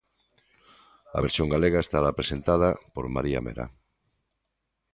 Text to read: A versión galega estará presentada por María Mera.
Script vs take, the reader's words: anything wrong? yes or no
no